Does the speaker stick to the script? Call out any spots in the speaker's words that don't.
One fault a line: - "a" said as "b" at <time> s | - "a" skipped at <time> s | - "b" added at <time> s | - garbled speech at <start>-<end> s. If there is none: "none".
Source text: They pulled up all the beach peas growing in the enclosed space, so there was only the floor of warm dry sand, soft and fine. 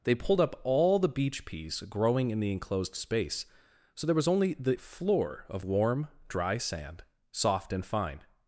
none